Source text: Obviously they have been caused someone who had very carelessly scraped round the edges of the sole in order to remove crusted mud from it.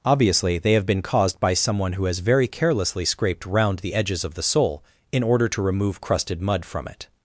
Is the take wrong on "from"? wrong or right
right